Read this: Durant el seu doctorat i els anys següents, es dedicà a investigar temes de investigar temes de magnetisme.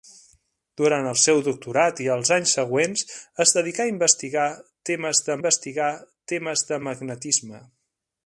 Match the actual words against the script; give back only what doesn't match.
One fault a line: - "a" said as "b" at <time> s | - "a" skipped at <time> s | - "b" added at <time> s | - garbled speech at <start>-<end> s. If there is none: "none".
none